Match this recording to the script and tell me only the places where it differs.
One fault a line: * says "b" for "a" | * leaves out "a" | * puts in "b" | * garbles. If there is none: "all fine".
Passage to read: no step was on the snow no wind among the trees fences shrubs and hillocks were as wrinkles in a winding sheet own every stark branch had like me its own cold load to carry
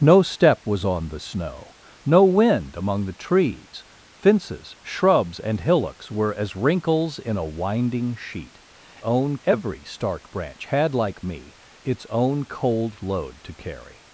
all fine